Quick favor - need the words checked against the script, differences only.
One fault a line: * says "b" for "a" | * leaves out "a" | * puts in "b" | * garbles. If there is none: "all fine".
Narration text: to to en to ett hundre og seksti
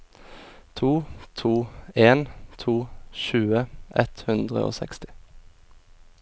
* puts in "tjue"